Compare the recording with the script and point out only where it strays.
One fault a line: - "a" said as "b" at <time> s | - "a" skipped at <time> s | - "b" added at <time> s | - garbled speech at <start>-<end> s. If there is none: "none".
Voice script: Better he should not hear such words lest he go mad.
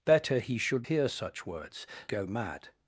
- "not" skipped at 0.9 s
- "lest he" skipped at 1.9 s